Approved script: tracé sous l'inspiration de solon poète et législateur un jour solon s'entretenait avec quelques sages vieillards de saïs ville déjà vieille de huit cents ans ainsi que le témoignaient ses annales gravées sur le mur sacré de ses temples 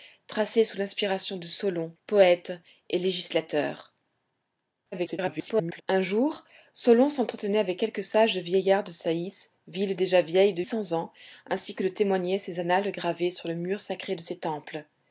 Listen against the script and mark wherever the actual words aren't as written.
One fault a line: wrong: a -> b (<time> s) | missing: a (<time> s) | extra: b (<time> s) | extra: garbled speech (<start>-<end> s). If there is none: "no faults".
extra: garbled speech (4.9-5.8 s)
missing: huit (10.6 s)